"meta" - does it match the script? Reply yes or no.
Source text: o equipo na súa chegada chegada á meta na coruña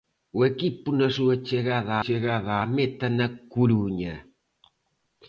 yes